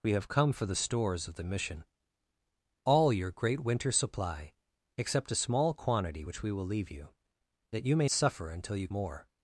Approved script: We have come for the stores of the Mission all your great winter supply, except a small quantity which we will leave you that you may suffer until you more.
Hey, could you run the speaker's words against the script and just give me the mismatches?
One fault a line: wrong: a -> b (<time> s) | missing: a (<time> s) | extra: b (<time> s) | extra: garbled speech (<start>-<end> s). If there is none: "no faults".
no faults